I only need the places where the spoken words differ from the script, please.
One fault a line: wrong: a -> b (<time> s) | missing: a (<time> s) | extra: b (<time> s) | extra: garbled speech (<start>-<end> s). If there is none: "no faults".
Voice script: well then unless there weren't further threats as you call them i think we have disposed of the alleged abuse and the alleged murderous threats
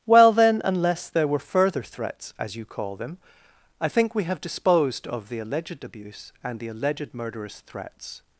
wrong: weren't -> were (1.3 s)